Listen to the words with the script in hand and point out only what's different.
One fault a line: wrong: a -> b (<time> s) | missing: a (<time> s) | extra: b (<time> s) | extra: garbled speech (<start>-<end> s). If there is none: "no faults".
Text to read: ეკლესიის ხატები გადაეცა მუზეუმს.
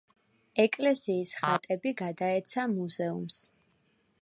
no faults